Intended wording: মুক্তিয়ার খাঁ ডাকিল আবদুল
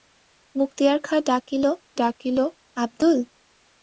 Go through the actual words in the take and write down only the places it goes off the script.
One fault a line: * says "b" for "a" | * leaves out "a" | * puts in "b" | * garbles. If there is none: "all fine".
* puts in "ডাকিল"